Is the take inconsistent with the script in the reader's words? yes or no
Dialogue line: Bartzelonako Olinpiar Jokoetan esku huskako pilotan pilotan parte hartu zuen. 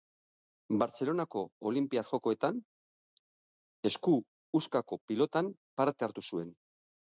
yes